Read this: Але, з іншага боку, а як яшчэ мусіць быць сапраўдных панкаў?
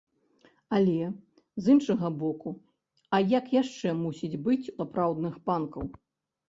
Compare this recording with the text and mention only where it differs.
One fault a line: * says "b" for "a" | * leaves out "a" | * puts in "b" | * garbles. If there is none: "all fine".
all fine